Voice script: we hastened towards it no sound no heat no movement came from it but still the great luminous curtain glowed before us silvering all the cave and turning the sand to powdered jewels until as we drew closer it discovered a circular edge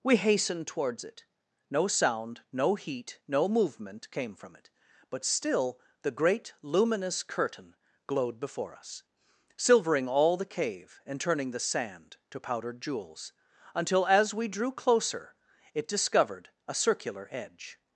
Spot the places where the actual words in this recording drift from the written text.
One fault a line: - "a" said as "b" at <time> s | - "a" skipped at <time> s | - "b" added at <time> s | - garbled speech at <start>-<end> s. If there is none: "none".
none